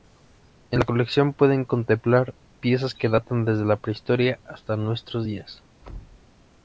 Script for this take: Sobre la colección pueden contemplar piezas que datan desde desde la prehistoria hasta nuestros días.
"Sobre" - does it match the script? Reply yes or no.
no